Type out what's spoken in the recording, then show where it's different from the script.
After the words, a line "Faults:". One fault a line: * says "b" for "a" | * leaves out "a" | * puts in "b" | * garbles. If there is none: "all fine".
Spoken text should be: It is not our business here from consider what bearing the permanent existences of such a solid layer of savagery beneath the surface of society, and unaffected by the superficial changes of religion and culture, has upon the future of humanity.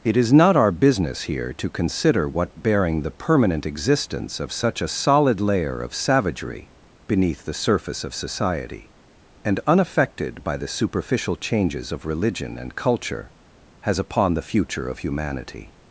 It is not our business here to consider what bearing the permanent existence of such a solid layer of savagery beneath the surface of society, and unaffected by the superficial changes of religion and culture, has upon the future of humanity.
Faults:
* says "to" for "from"
* says "existence" for "existences"